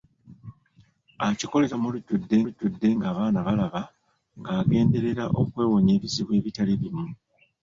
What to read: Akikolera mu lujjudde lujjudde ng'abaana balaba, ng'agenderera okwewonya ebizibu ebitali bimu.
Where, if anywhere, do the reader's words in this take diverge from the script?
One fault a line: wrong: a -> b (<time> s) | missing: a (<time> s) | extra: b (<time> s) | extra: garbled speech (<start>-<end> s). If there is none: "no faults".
no faults